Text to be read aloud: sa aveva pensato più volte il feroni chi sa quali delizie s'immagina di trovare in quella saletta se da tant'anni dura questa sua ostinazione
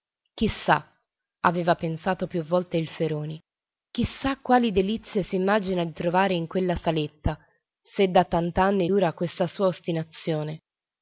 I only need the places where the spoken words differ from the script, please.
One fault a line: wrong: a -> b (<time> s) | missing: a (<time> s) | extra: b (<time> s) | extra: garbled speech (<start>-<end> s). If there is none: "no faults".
no faults